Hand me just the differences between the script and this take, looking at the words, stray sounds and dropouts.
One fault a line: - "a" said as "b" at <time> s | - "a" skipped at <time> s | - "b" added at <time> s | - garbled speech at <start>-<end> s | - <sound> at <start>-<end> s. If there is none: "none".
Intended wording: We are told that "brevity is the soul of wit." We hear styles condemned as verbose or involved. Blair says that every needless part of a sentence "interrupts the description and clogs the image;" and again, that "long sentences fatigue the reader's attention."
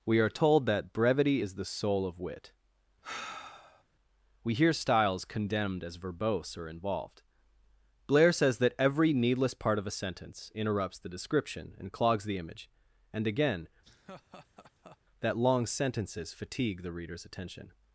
- sigh at 3.0-3.8 s
- laugh at 13.8-15.0 s